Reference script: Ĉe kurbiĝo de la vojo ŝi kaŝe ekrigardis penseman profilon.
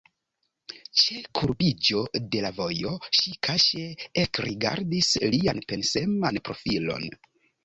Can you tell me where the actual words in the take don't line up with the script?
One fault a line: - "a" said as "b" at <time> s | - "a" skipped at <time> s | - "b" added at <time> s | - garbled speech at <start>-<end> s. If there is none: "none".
- "lian" added at 5.3 s